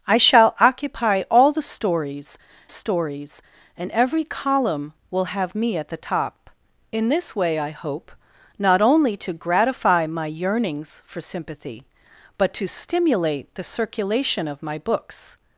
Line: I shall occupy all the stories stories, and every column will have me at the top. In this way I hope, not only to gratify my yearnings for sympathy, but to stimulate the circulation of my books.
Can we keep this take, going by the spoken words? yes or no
yes